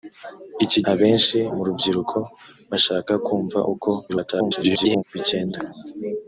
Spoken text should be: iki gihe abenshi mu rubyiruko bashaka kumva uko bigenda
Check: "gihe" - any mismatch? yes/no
yes